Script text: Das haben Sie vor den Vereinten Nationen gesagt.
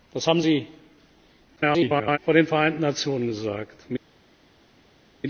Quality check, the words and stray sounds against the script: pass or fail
fail